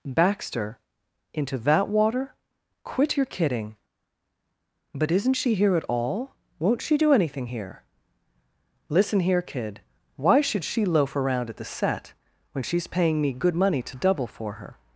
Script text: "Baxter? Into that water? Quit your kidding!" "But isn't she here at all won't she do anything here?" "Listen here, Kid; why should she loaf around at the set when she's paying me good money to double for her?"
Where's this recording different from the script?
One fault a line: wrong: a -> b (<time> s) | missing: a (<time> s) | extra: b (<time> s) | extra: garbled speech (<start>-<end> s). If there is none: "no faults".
no faults